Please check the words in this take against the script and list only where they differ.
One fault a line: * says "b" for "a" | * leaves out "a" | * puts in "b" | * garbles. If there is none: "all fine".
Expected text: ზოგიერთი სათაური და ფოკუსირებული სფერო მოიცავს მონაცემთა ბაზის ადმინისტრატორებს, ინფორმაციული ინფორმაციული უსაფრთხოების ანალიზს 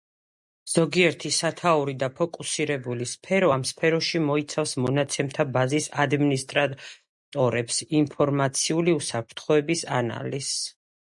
* puts in "ამ სფეროში"
* leaves out "ინფორმაციული"